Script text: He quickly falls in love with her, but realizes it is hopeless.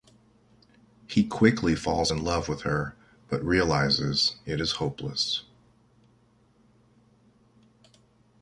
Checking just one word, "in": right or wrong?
right